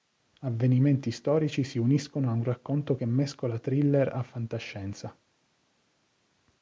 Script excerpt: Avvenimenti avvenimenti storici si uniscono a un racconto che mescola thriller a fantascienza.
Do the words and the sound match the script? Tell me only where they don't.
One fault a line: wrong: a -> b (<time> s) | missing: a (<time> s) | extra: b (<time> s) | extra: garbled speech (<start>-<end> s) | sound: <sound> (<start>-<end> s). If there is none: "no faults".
missing: avvenimenti (1.1 s)